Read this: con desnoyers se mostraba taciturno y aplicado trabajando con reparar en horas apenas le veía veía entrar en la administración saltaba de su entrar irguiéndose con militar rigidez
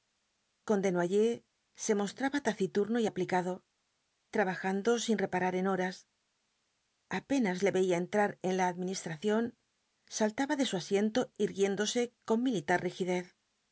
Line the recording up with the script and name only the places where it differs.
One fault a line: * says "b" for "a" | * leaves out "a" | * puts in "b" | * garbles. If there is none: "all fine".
* says "sin" for "con"
* leaves out "veía"
* says "asiento" for "entrar"